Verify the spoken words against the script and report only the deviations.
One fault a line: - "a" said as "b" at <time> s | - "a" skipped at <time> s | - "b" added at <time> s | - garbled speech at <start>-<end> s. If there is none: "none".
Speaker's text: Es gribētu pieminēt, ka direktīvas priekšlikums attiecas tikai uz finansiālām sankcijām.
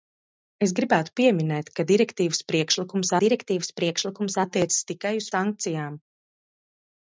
- "direktīvas priekšlikums" added at 3.2 s
- "finansiālām" skipped at 5.3 s